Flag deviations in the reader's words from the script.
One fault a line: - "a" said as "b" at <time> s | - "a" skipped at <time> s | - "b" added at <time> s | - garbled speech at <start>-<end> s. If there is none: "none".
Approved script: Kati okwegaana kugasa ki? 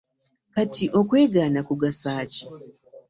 none